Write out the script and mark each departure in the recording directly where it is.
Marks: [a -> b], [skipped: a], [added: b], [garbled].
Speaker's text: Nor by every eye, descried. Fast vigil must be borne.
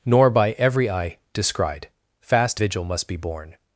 Nor by every eye, descried. Fast vigil must be borne.